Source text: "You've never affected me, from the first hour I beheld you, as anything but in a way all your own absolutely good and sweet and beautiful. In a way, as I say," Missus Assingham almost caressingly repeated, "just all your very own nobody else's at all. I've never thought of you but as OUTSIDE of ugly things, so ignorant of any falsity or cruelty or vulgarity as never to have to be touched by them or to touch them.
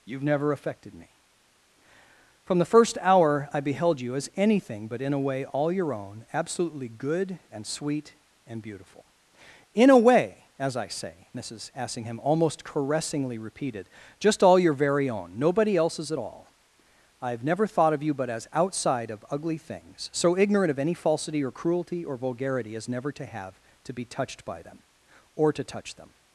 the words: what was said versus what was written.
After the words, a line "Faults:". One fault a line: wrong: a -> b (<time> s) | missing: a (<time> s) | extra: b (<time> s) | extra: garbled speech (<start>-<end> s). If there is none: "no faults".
"You've never affected me, from the first hour I beheld you, as anything but in a way all your own absolutely good and sweet and beautiful. In a way, as I say," Missus Assingham almost caressingly repeated, "just all your very own nobody else's at all. I've never thought of you but as OUTSIDE of ugly things, so ignorant of any falsity or cruelty or vulgarity as never to have to be touched by them or to touch them.
Faults:
no faults